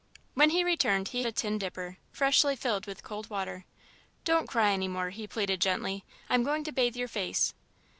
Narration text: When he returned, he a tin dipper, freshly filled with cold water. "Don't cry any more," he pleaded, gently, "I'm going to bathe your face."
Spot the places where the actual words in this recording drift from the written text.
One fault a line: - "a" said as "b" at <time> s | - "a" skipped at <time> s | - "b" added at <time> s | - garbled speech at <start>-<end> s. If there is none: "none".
none